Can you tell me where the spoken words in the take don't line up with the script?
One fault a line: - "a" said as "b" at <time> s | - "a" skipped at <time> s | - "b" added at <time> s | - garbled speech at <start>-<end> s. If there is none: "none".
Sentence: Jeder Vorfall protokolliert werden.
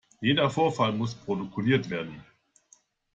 - "muss" added at 0.9 s